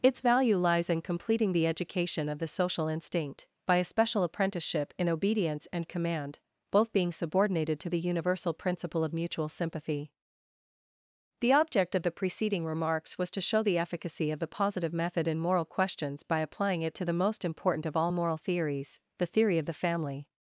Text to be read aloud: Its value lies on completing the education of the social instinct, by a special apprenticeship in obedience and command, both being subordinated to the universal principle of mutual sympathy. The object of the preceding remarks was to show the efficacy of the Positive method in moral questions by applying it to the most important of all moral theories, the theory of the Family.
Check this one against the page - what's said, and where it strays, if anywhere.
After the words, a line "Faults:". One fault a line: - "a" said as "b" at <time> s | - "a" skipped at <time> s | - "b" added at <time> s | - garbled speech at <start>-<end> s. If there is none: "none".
Its value lies in completing the education of the social instinct, by a special apprenticeship in obedience and command, both being subordinated to the universal principle of mutual sympathy. The object of the preceding remarks was to show the efficacy of the Positive method in moral questions by applying it to the most important of all moral theories, the theory of the Family.
Faults:
- "on" said as "in" at 0.9 s